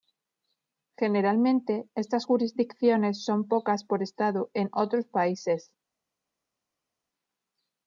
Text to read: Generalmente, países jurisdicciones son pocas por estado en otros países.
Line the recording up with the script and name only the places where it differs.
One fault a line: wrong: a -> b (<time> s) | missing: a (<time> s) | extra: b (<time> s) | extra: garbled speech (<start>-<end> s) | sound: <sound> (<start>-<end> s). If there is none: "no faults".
wrong: países -> estas (2.0 s)